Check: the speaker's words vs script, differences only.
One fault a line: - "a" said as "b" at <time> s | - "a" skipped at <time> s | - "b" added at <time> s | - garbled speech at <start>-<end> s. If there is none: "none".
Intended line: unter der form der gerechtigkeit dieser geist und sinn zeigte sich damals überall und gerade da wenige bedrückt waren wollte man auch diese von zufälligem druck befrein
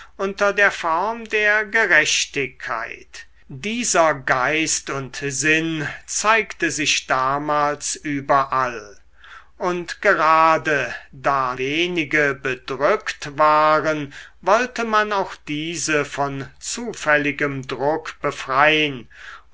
none